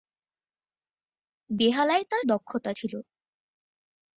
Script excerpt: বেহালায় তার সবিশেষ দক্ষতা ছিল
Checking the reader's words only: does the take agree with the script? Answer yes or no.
no